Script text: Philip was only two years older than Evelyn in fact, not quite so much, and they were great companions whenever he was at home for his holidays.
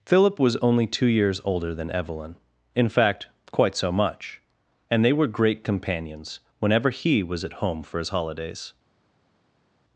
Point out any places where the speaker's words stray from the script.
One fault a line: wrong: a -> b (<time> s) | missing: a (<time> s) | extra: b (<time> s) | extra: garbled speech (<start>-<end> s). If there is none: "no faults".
missing: not (3.3 s)